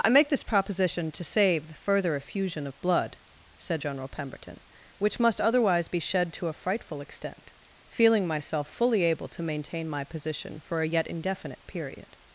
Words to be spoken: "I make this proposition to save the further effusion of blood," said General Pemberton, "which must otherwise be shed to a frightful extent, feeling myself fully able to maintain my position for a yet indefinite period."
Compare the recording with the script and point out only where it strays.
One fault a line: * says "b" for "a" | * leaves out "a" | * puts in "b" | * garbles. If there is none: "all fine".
all fine